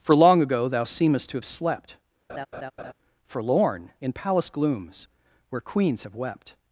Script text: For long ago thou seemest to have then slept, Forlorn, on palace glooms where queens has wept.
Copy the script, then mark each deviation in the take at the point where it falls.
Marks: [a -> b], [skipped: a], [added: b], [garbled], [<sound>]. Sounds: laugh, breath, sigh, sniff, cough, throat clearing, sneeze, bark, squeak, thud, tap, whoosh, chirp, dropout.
For long ago thou seemest to have [skipped: then] slept, [laugh] Forlorn, [on -> in] palace glooms where queens [has -> have] wept.